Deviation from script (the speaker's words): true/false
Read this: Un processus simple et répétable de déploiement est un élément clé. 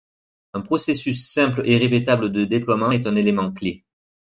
false